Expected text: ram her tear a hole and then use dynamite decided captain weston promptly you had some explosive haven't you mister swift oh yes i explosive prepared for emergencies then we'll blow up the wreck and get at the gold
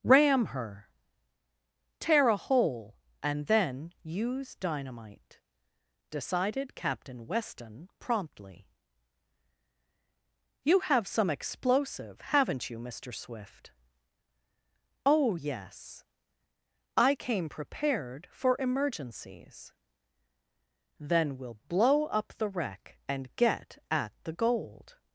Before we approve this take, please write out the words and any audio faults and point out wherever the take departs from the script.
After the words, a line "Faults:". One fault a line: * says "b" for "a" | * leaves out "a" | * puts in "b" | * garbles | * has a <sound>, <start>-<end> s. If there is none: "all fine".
ram her tear a hole and then use dynamite decided captain weston promptly you have some explosive haven't you mister swift oh yes i came prepared for emergencies then we'll blow up the wreck and get at the gold
Faults:
* says "have" for "had"
* says "came" for "explosive"